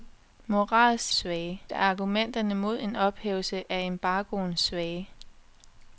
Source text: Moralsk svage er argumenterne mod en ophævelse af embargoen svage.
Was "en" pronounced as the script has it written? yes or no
yes